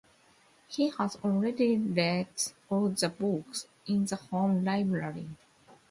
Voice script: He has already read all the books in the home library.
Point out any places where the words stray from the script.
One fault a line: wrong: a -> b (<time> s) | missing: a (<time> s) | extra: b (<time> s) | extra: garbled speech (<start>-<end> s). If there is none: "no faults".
no faults